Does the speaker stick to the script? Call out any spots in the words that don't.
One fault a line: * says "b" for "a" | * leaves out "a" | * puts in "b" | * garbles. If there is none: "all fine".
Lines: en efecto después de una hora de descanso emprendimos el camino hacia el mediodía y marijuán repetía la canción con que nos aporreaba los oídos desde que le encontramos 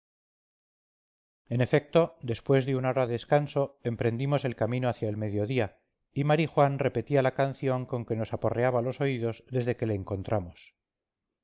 * leaves out "de"